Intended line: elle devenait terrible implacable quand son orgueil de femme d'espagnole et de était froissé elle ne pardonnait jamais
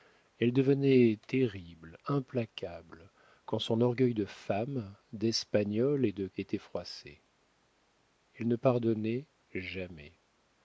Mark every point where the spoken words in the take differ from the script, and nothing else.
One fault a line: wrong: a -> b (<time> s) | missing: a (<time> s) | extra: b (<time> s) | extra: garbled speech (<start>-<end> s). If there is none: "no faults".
no faults